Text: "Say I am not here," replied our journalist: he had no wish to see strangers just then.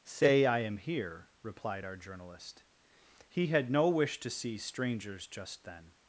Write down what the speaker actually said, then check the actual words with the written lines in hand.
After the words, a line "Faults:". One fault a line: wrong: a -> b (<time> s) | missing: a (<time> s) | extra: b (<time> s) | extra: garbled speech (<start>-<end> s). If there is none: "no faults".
"Say I am here," replied our journalist: he had no wish to see strangers just then.
Faults:
missing: not (0.8 s)